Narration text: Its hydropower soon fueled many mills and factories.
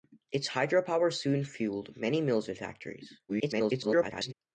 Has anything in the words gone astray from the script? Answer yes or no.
yes